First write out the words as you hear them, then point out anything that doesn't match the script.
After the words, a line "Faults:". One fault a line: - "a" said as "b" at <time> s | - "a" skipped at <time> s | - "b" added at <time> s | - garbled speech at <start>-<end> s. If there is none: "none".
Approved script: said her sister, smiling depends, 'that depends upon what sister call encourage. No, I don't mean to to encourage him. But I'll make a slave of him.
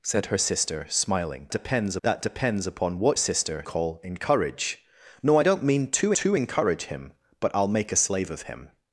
said her sister, smiling depends, 'that depends upon what sister call encourage. No, I don't mean to to encourage him. But I'll make a slave of him.
Faults:
none